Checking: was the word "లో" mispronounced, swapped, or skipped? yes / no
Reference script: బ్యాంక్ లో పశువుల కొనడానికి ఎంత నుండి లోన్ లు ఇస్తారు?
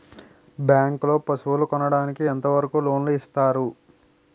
no